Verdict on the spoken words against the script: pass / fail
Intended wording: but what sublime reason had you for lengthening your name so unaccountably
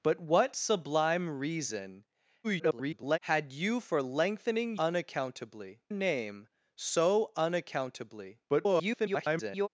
fail